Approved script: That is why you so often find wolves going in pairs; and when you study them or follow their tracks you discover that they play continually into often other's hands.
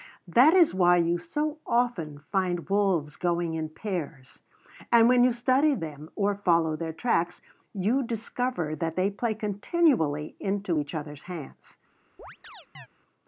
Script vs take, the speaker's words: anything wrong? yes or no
yes